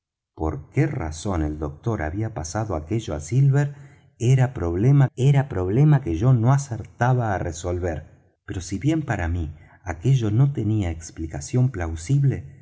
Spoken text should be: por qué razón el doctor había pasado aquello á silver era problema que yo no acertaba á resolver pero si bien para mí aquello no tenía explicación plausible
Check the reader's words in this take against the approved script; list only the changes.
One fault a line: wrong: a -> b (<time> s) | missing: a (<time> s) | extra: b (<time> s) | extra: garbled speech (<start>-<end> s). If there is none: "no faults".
extra: era problema (5.1 s)